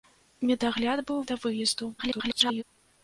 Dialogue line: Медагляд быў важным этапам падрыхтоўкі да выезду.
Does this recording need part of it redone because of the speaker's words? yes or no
yes